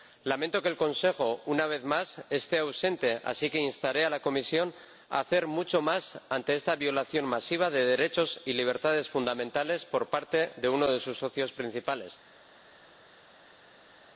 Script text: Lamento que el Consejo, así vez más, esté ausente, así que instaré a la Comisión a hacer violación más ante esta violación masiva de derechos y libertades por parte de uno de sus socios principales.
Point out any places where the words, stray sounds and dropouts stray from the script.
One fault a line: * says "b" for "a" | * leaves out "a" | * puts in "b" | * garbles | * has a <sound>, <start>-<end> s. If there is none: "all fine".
* says "una" for "así"
* says "mucho" for "violación"
* puts in "fundamentales"